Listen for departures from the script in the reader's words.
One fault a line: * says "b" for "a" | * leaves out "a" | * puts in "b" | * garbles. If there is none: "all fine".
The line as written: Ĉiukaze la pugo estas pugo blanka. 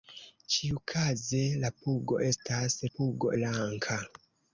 all fine